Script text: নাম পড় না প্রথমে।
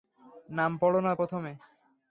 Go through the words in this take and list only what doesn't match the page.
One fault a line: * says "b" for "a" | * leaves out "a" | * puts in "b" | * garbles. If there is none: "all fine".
all fine